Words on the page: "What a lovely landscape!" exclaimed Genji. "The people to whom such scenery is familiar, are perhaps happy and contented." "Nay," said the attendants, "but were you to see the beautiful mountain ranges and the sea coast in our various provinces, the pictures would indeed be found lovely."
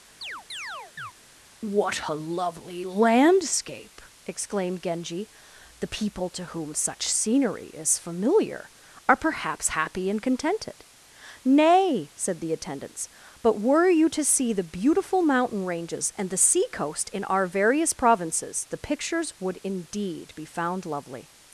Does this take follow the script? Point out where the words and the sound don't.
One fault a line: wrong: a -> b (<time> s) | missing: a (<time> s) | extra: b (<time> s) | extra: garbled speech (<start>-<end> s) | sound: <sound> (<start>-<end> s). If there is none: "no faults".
sound: chirp (0.2-1.1 s)